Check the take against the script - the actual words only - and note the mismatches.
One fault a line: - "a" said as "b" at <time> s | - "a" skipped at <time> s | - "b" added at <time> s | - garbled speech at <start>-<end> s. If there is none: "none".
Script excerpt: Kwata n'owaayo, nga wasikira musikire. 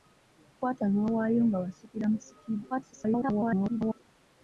- garbled speech at 2.7-4.0 s